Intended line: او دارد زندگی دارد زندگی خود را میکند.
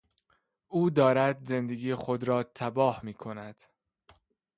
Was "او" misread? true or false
false